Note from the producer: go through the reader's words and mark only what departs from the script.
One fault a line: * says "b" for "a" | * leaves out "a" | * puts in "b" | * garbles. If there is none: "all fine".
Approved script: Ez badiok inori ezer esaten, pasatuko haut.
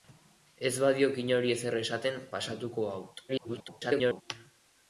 * garbles